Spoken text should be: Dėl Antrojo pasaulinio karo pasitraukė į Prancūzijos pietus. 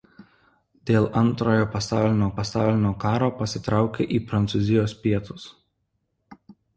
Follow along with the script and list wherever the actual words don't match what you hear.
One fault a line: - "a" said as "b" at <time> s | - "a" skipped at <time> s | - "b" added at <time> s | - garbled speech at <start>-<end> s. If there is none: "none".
- "pasaulinio" added at 2.4 s